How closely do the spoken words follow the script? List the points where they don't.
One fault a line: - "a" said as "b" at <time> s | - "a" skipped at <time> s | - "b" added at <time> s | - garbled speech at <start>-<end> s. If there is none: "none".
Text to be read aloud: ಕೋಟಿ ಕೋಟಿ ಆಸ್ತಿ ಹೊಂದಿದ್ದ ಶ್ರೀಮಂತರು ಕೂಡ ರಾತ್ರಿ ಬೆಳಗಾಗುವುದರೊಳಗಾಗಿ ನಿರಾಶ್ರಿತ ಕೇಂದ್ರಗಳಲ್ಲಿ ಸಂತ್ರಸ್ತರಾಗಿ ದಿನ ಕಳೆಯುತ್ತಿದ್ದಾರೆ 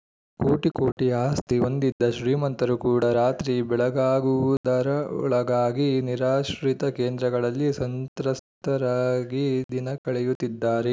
none